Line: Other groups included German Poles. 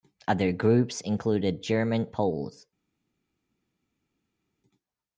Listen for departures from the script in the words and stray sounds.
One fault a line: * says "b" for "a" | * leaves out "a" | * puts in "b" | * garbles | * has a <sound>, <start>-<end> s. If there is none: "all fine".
all fine